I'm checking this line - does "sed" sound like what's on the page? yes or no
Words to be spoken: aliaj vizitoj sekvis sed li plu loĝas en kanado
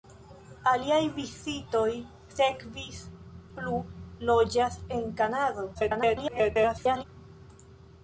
no